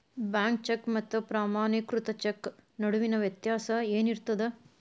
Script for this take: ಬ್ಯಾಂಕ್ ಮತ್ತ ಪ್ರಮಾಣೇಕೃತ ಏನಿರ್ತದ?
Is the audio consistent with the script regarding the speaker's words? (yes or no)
no